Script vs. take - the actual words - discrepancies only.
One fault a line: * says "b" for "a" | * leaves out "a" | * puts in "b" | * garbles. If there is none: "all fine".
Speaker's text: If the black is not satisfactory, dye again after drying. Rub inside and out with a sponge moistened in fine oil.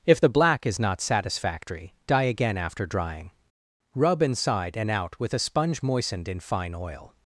all fine